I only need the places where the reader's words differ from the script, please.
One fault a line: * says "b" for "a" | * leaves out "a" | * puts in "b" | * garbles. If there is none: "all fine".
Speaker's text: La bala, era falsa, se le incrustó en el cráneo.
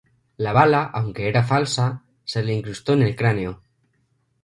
* puts in "aunque"